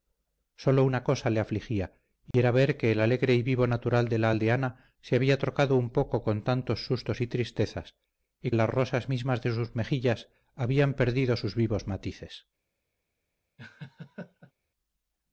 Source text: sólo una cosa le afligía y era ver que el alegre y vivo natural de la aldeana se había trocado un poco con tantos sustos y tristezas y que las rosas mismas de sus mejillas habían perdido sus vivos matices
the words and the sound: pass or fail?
fail